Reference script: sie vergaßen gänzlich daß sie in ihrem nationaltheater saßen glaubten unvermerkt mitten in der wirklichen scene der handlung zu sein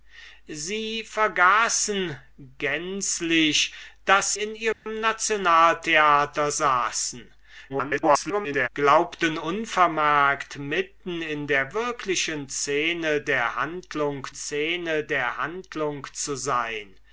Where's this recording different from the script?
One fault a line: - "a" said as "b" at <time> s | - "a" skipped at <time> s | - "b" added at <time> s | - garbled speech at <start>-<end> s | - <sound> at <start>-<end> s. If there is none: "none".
- "sie" skipped at 4.3 s
- dropout at 4.7-4.9 s
- garbled speech at 7.7-8.7 s
- "scene der handlung" added at 14.3 s